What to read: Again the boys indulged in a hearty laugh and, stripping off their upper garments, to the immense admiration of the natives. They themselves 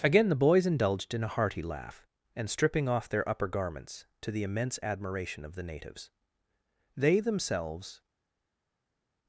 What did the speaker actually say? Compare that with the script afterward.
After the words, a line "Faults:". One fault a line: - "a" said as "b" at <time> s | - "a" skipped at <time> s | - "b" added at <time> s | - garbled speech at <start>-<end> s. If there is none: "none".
Again the boys indulged in a hearty laugh and, stripping off their upper garments, to the immense admiration of the natives. They themselves
Faults:
none